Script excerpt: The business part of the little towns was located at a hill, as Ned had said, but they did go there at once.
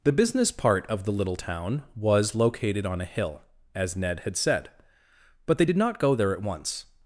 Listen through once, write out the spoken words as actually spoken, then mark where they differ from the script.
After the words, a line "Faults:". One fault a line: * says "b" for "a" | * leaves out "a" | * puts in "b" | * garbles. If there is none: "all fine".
The business part of the little town was located on a hill, as Ned had said, but they did not go there at once.
Faults:
* says "town" for "towns"
* says "on" for "at"
* puts in "not"